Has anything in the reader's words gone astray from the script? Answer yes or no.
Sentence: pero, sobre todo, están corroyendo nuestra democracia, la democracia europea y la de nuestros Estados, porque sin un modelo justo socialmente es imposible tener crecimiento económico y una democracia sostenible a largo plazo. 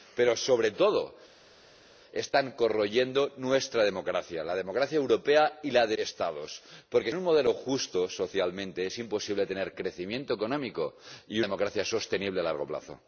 yes